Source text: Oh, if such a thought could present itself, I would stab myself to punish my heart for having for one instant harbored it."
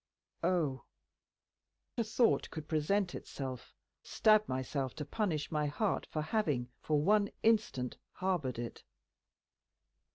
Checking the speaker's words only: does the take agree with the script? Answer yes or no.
no